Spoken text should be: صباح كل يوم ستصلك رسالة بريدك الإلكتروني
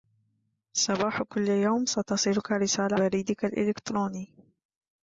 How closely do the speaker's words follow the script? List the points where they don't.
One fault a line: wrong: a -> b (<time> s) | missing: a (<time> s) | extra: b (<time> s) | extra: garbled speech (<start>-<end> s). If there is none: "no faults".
no faults